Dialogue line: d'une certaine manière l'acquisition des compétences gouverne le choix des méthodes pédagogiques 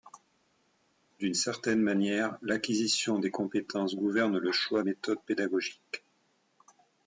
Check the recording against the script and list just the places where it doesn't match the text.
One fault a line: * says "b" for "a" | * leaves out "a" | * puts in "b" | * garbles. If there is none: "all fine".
* leaves out "des"